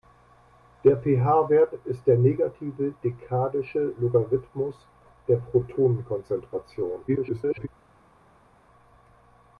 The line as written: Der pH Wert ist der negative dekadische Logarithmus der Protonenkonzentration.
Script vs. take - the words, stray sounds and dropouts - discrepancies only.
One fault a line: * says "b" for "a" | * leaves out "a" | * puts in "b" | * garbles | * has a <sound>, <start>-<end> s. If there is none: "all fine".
* garbles